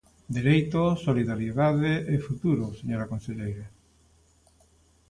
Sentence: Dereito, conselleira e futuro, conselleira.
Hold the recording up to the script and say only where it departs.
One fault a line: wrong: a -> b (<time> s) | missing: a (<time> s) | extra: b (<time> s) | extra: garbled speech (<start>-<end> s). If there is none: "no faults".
wrong: conselleira -> solidariedade (1.1 s)
extra: señora (2.8 s)